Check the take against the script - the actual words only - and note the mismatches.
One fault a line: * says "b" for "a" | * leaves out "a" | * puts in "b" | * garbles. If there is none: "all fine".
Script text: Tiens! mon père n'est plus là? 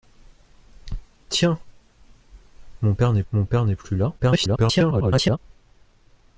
* puts in "mon père n'est"
* garbles